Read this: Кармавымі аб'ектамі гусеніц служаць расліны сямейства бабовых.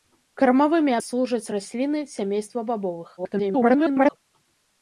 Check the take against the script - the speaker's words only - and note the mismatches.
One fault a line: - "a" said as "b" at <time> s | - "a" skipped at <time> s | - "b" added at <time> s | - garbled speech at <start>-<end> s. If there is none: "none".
- "аб'ектамі гусеніц" skipped at 0.9 s
- garbled speech at 3.2-4.2 s